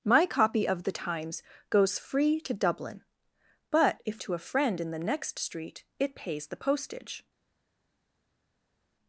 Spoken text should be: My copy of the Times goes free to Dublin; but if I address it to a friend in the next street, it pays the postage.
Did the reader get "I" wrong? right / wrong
wrong